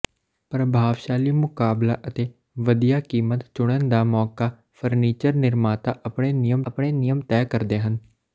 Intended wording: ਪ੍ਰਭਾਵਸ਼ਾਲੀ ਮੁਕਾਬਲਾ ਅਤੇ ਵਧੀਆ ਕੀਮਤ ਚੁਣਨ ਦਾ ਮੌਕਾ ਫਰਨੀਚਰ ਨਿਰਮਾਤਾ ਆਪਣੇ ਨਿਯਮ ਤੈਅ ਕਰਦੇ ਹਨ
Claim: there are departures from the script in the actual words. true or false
true